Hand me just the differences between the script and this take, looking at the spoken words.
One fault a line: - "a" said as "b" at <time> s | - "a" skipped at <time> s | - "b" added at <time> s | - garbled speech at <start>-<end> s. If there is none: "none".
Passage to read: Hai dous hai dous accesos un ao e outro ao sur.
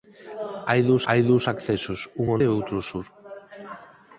none